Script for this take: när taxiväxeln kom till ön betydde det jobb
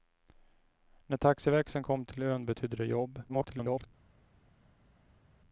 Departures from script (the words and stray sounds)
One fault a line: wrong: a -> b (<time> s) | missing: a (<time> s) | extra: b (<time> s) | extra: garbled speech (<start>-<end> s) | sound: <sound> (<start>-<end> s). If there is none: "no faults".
extra: garbled speech (3.3-3.9 s)